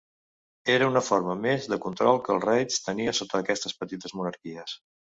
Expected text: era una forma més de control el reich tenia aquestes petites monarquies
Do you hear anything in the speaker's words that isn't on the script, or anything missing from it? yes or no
yes